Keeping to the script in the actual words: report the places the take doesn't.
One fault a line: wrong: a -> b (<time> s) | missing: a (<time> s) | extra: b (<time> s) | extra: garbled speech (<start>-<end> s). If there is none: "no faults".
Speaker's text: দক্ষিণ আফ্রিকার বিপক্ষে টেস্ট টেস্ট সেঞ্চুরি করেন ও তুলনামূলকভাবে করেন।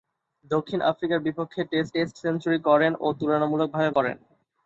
no faults